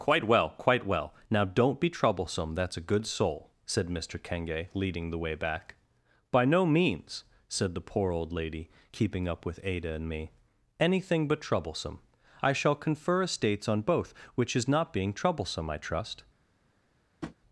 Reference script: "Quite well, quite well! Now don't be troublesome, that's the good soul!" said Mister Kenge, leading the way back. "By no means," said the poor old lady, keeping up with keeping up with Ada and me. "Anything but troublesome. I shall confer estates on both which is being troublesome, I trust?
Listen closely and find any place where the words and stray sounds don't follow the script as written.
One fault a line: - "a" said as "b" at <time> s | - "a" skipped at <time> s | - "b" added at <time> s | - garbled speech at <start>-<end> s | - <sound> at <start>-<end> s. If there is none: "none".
- "the" said as "a" at 2.8 s
- "keeping up with" skipped at 9.6 s
- "not" added at 14.7 s
- tap at 17.2-17.4 s